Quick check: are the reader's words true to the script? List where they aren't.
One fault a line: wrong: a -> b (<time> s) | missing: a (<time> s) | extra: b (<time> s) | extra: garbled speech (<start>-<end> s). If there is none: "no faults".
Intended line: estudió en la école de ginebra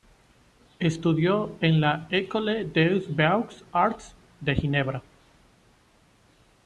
extra: des beaux arts (2.7 s)